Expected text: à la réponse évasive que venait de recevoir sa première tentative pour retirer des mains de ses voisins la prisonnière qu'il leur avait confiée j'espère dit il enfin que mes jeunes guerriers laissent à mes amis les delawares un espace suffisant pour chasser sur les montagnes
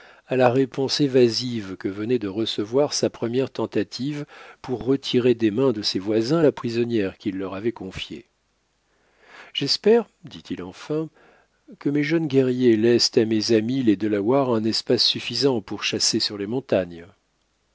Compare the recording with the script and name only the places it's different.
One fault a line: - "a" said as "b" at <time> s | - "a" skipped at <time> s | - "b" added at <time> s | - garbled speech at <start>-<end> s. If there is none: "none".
none